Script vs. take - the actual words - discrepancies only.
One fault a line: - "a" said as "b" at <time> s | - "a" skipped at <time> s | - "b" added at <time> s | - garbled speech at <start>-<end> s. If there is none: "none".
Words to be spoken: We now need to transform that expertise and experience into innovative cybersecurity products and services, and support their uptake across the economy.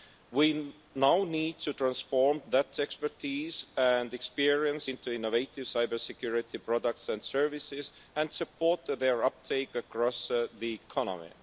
none